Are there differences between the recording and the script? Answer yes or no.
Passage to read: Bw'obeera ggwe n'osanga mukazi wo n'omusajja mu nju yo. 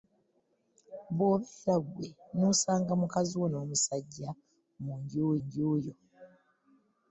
yes